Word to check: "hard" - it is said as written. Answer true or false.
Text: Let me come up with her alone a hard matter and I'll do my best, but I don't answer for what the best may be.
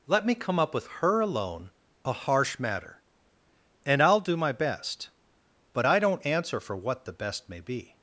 false